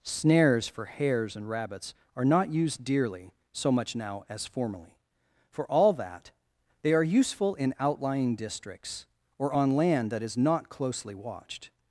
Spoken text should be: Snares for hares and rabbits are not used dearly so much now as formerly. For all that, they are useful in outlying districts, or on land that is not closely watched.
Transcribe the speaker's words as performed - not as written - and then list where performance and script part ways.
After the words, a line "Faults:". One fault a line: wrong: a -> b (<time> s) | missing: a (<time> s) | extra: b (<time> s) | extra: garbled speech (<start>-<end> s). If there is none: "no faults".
Snares for hares and rabbits are not used dearly so much now as formerly. For all that, they are useful in outlying districts, or on land that is not closely watched.
Faults:
no faults